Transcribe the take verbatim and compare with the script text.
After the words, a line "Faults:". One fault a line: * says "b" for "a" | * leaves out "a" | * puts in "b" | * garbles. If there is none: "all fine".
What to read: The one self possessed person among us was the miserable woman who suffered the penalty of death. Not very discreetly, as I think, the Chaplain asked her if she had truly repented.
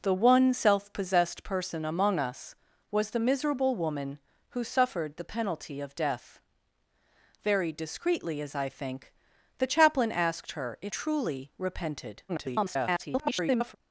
The one self possessed person among us was the miserable woman who suffered the penalty of death. Very discreetly, as I think, the Chaplain asked her if truly repented. [garbled]
Faults:
* leaves out "Not"
* leaves out "she had"
* garbles